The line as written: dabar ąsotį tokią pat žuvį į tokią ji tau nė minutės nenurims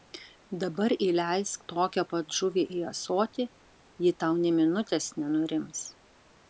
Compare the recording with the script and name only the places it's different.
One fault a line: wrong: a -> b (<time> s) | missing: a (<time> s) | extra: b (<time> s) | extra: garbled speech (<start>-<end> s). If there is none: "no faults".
wrong: ąsotį -> įleisk (1.1 s)
wrong: tokią -> ąsotį (2.9 s)